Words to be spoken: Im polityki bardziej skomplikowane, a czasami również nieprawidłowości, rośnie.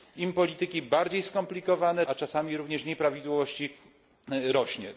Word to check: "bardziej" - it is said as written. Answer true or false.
true